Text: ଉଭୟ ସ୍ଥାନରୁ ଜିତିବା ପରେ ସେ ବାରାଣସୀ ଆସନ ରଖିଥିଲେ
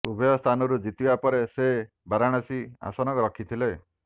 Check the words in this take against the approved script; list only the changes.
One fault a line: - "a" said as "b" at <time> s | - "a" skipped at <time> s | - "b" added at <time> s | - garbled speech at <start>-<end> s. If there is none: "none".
none